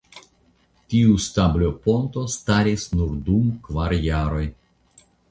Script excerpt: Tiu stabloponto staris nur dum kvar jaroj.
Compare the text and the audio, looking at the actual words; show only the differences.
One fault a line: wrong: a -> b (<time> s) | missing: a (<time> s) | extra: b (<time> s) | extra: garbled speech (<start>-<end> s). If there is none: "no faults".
no faults